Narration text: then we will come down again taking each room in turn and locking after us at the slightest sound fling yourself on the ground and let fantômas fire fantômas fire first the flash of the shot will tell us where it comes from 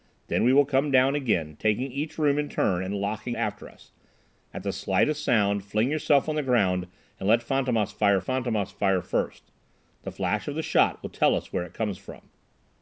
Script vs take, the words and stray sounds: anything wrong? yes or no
no